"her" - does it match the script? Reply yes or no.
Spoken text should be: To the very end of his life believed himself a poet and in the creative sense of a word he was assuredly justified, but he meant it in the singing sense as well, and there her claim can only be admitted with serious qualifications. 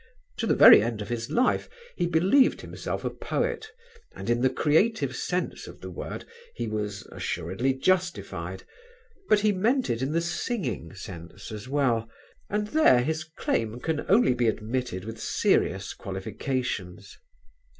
no